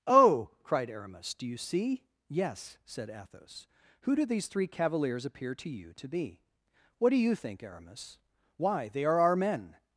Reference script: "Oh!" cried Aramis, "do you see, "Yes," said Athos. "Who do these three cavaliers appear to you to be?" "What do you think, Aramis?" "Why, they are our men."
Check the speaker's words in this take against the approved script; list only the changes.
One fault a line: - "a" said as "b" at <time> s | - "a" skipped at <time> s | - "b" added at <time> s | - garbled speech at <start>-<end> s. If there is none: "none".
none